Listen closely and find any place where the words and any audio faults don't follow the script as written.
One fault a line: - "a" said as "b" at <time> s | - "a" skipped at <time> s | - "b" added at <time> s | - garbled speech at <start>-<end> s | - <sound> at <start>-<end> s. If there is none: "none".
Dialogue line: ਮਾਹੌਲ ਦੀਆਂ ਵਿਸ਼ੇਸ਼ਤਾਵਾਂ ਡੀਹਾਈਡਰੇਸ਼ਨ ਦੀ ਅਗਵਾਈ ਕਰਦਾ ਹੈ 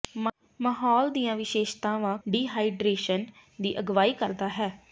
none